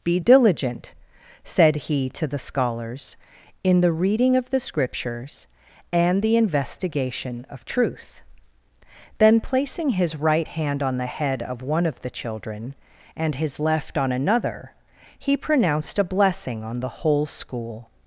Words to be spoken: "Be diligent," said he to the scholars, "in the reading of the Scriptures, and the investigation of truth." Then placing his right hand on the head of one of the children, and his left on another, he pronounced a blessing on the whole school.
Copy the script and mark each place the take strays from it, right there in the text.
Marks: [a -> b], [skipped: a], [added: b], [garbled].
"Be diligent," said he to the scholars, "in the reading of the Scriptures, and the investigation of truth." Then placing his right hand on the head of one of the children, and his left on another, he pronounced a blessing on the whole school.